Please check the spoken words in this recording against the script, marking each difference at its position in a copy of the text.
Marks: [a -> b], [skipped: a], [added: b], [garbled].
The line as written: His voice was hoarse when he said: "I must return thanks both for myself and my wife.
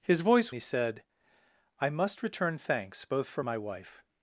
His voice [skipped: was hoarse when] he said: "I must return thanks both for [skipped: myself and] my wife.